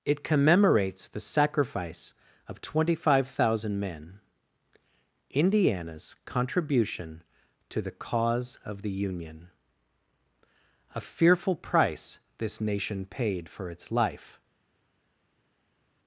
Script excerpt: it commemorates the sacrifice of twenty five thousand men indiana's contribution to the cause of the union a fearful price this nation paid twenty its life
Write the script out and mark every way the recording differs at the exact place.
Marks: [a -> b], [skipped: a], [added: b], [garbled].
it commemorates the sacrifice of twenty five thousand men indiana's contribution to the cause of the union a fearful price this nation paid [twenty -> for] its life